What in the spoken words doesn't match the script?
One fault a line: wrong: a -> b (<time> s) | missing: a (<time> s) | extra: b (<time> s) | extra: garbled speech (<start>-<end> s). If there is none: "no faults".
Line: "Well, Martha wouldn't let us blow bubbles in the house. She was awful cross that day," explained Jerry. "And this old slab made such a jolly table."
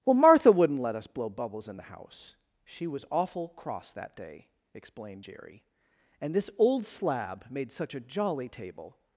no faults